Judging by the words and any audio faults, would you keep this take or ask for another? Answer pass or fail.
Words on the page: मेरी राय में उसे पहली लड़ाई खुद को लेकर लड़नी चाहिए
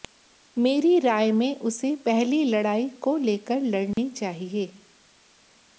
fail